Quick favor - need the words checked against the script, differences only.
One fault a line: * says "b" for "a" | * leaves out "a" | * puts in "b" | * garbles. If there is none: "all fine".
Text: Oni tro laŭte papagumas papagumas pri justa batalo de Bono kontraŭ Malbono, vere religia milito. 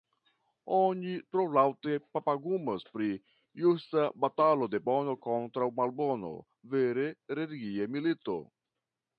* leaves out "papagumas"